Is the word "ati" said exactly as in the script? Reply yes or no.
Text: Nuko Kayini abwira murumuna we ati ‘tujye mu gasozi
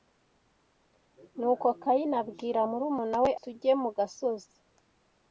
no